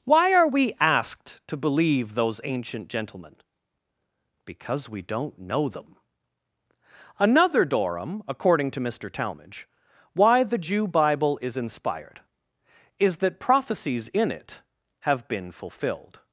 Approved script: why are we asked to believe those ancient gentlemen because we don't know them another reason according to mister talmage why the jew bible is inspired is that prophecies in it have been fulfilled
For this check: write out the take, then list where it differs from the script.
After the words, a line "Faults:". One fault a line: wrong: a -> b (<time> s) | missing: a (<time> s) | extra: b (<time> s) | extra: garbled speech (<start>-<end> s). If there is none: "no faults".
why are we asked to believe those ancient gentlemen because we don't know them another dorum according to mister talmage why the jew bible is inspired is that prophecies in it have been fulfilled
Faults:
wrong: reason -> dorum (7.6 s)